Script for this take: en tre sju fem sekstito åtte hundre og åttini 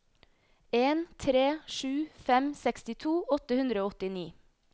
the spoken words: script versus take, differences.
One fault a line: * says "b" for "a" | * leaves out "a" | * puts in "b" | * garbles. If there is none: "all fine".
all fine